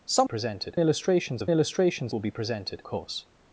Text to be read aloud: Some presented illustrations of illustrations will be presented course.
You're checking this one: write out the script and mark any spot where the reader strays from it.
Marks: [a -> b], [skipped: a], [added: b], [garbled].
Some presented illustrations of illustrations will be presented course.